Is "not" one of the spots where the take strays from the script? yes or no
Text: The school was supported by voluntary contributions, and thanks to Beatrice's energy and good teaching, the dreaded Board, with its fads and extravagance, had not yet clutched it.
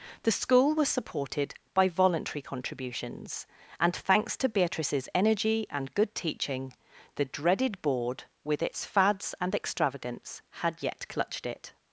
yes